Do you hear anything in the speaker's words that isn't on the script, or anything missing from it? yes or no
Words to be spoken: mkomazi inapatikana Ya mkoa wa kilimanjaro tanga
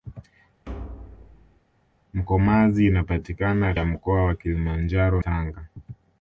no